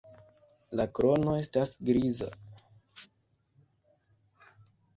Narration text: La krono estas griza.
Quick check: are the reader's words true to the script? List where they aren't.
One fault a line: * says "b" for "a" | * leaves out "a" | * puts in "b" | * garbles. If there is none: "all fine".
all fine